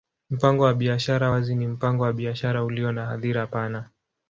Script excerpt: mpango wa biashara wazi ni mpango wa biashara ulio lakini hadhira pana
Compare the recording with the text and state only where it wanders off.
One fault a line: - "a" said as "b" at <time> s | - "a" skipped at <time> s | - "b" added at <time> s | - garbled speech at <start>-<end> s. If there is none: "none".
- "lakini" said as "na" at 2.9 s